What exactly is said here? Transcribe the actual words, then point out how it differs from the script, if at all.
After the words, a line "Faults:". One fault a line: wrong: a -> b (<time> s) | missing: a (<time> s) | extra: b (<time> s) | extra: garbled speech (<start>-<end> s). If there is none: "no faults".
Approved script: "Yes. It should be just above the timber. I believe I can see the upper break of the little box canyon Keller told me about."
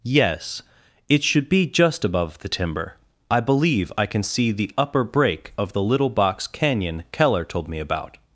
"Yes. It should be just above the timber. I believe I can see the upper break of the little box canyon Keller told me about."
Faults:
no faults